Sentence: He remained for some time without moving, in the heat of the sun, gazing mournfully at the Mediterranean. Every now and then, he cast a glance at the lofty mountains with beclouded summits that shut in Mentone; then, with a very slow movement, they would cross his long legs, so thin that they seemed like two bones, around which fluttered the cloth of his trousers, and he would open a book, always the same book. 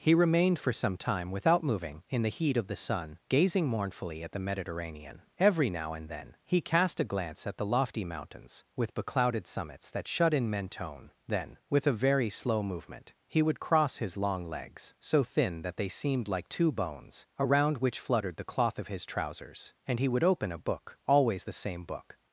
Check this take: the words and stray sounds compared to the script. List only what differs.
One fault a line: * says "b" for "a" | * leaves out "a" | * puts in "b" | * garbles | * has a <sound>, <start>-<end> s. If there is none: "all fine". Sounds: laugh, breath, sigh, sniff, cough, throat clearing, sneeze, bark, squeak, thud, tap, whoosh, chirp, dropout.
* says "he" for "they"